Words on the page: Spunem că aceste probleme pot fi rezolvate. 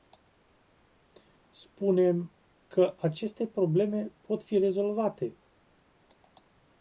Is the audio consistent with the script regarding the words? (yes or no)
yes